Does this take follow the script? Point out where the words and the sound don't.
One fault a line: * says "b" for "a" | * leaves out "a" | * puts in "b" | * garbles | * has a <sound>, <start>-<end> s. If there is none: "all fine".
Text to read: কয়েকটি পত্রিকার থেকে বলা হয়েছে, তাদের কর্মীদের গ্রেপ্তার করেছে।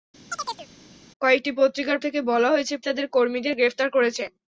* has a chirp, 0.3-0.7 s